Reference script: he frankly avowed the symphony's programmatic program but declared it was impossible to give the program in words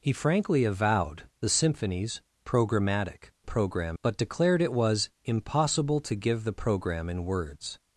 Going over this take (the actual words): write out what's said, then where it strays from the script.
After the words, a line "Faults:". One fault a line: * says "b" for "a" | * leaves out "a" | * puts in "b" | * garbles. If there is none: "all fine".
he frankly avowed the symphony's programmatic program but declared it was impossible to give the program in words
Faults:
all fine